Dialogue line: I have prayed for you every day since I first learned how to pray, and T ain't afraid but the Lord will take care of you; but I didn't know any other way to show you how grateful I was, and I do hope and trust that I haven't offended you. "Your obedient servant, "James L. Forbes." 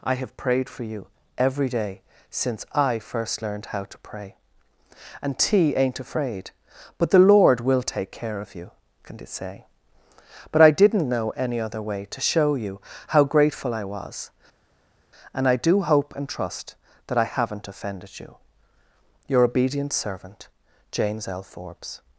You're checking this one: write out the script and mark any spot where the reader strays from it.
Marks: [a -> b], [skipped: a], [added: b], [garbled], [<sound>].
I have prayed for you every day since I first learned how to pray, and T ain't afraid but the Lord will take care of you; [added: can it say] but I didn't know any other way to show you how grateful I was, and I do hope and trust that I haven't offended you. "Your obedient servant, "James L. Forbes."